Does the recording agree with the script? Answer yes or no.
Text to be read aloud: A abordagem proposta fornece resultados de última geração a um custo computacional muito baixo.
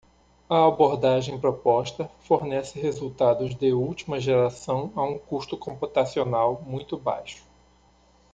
yes